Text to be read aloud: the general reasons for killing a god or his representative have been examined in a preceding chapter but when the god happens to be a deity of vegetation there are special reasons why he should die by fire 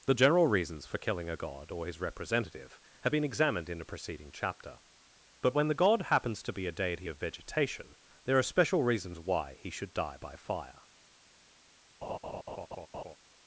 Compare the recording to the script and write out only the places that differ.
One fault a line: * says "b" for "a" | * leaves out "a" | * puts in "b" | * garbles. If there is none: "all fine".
all fine